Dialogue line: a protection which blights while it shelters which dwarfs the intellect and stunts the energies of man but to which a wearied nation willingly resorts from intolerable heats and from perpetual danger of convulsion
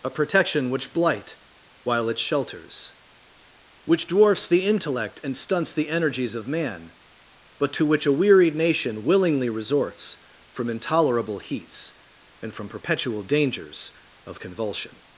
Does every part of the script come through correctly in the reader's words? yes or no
no